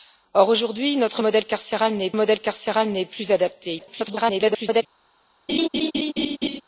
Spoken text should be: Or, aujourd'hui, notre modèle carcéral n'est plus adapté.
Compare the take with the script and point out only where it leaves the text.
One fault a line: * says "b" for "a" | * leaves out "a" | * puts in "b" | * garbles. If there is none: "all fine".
* puts in "modèle carcéral n'est"
* garbles